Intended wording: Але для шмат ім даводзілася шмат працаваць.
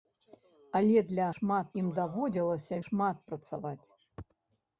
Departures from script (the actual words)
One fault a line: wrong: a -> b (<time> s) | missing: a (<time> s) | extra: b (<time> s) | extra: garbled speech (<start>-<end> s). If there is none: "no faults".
no faults